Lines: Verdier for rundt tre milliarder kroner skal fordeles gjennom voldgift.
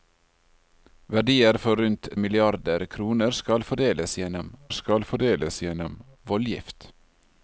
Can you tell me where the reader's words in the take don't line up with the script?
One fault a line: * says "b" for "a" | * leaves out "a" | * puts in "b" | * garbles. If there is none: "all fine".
* leaves out "tre"
* puts in "skal fordeles gjennom"